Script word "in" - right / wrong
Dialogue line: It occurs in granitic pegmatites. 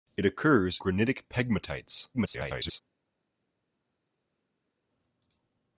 wrong